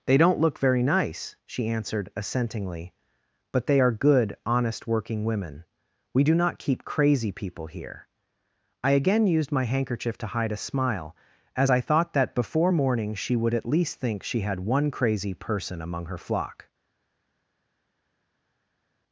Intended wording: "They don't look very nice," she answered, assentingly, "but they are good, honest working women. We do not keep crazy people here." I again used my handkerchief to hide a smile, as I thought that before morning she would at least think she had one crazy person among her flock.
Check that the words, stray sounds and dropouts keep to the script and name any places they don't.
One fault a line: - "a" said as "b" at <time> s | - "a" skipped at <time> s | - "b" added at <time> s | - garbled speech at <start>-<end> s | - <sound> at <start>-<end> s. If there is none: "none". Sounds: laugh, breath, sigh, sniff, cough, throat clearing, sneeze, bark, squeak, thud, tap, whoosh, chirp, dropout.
none